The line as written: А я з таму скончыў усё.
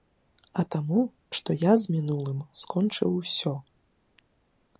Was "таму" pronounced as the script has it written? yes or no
no